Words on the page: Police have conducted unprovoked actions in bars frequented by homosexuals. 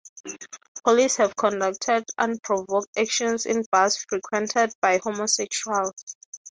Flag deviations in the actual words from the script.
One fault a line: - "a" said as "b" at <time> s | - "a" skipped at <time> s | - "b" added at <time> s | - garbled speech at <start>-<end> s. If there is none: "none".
none